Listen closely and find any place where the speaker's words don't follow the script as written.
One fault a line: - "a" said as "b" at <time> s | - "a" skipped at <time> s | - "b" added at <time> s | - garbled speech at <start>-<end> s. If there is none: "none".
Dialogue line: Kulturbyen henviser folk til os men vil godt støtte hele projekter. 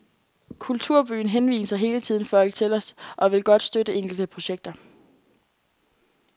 - "hele tiden" added at 1.8 s
- "men" said as "og" at 3.2 s
- "hele" said as "enkelte" at 3.9 s